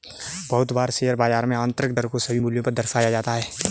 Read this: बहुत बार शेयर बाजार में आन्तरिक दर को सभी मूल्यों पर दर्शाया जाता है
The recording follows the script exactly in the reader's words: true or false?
true